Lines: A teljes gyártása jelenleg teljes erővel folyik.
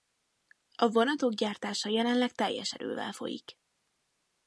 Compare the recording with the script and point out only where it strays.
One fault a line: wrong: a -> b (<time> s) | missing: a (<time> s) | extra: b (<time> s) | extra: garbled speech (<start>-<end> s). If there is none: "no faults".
wrong: teljes -> vonatok (0.9 s)